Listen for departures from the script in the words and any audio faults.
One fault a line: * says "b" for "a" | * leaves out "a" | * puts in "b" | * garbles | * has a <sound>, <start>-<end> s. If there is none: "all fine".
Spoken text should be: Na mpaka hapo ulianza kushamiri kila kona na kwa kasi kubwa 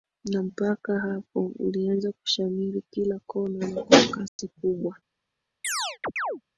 * has a dropout, 4.3-4.4 s
* has a chirp, 5.6-6.4 s